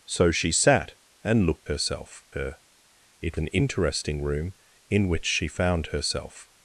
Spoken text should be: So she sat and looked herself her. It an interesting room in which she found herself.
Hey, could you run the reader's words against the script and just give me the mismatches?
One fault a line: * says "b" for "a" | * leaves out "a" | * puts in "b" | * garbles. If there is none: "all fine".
all fine